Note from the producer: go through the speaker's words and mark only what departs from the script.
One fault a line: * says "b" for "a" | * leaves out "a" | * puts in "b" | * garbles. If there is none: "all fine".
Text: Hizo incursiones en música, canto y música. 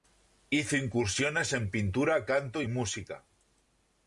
* says "pintura" for "música"